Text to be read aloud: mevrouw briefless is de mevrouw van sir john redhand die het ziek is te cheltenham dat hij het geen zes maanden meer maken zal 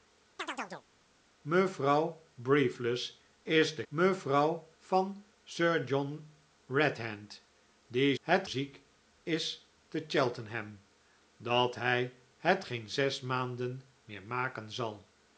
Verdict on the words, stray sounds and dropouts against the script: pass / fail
fail